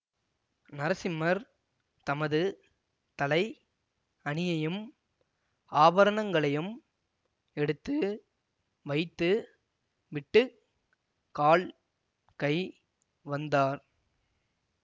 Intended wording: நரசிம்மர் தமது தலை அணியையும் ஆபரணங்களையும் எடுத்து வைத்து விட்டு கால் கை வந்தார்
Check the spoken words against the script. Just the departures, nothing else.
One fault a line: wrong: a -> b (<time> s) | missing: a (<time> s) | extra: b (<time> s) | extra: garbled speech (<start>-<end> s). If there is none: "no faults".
no faults